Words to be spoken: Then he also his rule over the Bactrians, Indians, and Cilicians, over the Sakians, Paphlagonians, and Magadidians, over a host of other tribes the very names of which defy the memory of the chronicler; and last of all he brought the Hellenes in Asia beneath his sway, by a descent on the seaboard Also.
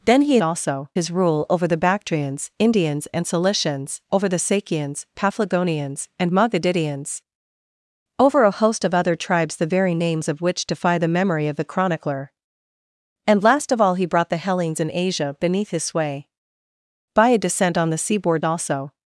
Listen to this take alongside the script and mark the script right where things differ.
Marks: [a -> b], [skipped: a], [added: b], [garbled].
Then he also his rule over the Bactrians, Indians, and Cilicians, over the Sakians, Paphlagonians, and Magadidians, over a host of other tribes the very names of which defy the memory of the chronicler; and last of all he brought the Hellenes in Asia beneath his sway, by a descent on the seaboard Also.